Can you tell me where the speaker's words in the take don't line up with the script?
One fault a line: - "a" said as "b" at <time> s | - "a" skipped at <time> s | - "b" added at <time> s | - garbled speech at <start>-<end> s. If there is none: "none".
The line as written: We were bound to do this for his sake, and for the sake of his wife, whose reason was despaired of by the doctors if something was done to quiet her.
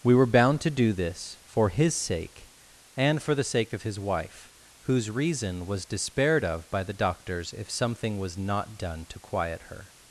- "not" added at 8.4 s